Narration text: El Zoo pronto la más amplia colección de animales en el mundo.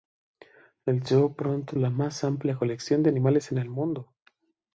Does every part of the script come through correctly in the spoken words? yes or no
yes